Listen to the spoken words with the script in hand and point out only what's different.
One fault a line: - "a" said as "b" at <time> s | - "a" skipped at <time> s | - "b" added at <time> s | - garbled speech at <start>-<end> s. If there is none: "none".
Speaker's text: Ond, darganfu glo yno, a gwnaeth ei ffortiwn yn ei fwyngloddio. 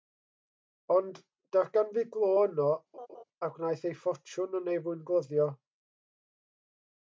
none